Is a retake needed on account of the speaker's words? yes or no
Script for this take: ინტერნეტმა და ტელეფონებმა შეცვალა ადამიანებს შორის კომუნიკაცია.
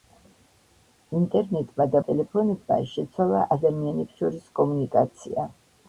no